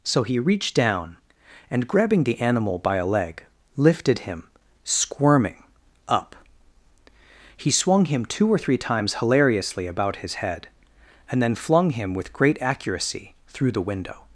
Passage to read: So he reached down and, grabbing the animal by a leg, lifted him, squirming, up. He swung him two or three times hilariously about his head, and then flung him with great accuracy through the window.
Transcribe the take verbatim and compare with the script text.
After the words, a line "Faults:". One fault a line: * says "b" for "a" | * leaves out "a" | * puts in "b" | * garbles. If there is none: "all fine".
So he reached down and, grabbing the animal by a leg, lifted him, squirming, up. He swung him two or three times hilariously about his head, and then flung him with great accuracy through the window.
Faults:
all fine